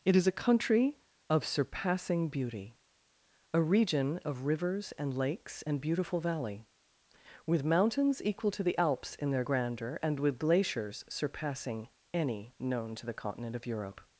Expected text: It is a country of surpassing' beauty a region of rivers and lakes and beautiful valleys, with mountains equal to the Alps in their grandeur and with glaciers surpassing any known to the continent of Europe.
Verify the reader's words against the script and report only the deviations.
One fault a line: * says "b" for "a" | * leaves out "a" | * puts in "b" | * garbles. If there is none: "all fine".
* says "valley" for "valleys"